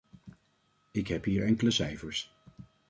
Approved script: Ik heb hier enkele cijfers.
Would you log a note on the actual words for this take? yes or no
no